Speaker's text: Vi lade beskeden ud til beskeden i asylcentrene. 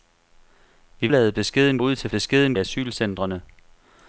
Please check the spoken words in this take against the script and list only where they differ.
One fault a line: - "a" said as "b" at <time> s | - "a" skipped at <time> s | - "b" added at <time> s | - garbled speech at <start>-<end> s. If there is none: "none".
none